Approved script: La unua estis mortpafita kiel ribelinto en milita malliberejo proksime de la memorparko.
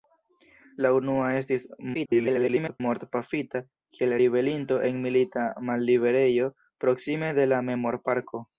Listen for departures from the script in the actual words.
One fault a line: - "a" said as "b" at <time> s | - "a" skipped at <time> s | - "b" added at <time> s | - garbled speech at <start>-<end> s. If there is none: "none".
- garbled speech at 1.9-2.8 s